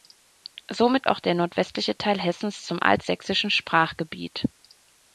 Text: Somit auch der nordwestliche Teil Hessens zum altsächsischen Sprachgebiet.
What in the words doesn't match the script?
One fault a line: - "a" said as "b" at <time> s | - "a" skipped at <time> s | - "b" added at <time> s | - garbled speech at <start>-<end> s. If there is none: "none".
none